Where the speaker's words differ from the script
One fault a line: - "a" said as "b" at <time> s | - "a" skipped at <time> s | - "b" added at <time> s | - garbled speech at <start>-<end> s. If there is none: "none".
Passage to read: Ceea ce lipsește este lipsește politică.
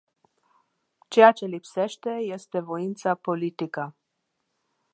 - "lipsește" said as "voința" at 2.6 s